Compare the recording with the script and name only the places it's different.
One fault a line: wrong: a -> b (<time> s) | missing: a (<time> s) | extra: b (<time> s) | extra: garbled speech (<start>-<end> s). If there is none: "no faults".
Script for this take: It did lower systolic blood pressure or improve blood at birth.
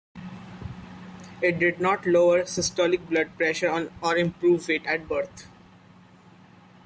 extra: not (1.8 s)
wrong: blood -> weight (4.7 s)